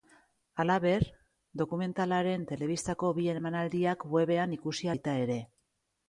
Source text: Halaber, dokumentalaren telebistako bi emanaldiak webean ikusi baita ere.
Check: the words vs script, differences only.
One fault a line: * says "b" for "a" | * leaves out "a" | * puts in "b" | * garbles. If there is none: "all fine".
all fine